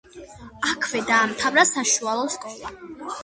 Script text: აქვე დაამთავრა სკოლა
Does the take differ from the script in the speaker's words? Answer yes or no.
yes